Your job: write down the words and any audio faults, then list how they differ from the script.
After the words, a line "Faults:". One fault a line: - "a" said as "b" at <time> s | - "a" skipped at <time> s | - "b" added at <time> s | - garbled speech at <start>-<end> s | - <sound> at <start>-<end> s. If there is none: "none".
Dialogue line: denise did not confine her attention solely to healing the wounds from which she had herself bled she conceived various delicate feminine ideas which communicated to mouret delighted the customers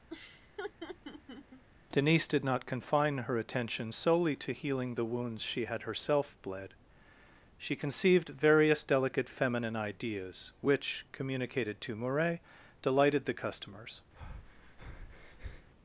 denise did not confine her attention solely to healing the wounds she had herself bled she conceived various delicate feminine ideas which communicated to mouret delighted the customers
Faults:
- laugh at 0.1-1.6 s
- "from which" skipped at 5.4 s
- breath at 14.2-15.7 s